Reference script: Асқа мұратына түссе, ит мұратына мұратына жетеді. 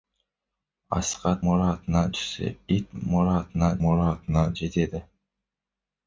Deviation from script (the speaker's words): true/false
false